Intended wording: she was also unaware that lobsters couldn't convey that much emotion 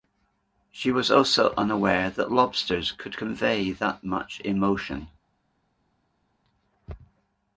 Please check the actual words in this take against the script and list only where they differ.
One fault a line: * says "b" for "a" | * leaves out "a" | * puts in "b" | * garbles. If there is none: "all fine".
* says "could" for "couldn't"